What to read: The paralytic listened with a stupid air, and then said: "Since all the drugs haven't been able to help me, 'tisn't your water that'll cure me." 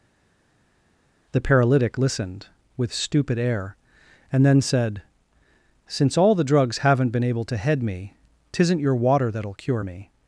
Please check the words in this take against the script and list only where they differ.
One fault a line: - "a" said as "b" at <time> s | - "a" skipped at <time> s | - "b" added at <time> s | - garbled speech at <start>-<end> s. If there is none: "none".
- "a" skipped at 2.9 s
- "help" said as "head" at 7.6 s